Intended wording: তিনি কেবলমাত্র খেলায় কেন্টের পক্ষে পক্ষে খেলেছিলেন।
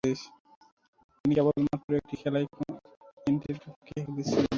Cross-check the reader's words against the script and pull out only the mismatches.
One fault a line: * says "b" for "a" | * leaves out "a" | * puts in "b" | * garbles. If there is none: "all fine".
* puts in "একটি"
* leaves out "পক্ষে"